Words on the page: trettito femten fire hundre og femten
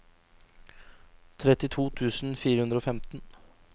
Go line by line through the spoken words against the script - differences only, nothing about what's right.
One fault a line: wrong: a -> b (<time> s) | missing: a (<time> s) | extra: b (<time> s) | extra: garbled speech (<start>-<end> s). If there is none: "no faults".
wrong: femten -> tusen (2.0 s)